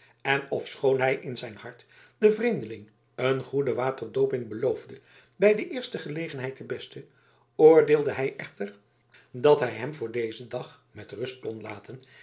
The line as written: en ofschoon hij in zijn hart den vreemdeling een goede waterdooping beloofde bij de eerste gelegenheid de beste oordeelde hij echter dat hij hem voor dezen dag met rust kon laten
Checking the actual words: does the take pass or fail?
pass